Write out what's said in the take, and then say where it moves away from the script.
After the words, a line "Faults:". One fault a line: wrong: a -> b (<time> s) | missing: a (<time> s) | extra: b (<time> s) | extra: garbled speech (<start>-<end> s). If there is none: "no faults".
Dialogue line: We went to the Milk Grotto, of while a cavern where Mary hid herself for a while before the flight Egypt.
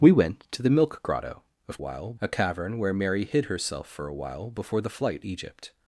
We went to the Milk Grotto, of while a cavern where Mary hid herself for a while before the flight Egypt.
Faults:
no faults